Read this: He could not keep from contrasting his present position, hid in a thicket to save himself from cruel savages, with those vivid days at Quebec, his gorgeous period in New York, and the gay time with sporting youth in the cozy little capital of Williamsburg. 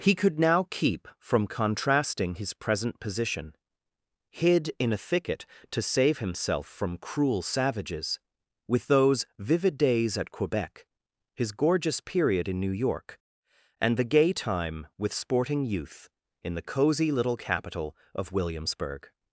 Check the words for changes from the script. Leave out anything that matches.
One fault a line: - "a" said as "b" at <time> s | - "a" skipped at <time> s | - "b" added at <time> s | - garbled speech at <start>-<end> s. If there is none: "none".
- "not" said as "now" at 0.4 s